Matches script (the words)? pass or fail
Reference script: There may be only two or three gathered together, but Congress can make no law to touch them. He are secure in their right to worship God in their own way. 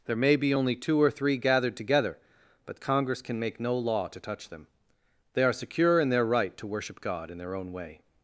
fail